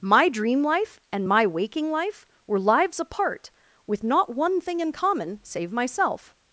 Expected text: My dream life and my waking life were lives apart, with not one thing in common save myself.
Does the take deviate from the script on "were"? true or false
false